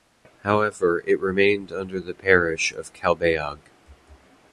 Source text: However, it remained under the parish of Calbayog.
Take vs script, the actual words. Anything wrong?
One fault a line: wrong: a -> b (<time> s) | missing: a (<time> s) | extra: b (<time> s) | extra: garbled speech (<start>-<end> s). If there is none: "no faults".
no faults